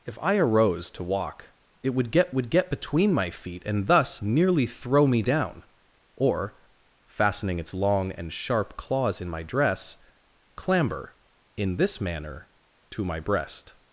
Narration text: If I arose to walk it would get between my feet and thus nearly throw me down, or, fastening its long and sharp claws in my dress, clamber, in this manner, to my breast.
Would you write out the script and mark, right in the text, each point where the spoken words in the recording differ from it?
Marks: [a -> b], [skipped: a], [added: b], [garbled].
If I arose to walk it would get [added: would get] between my feet and thus nearly throw me down, or, fastening its long and sharp claws in my dress, clamber, in this manner, to my breast.